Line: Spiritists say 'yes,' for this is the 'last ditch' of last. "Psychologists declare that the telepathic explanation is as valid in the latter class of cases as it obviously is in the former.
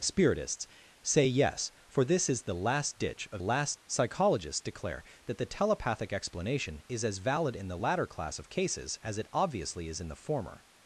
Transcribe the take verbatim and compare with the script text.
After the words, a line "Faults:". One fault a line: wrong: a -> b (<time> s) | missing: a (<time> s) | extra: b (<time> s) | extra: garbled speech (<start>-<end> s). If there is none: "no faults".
Spiritists say 'yes,' for this is the 'last ditch' of last. "Psychologists declare that the telepathic explanation is as valid in the latter class of cases as it obviously is in the former.
Faults:
no faults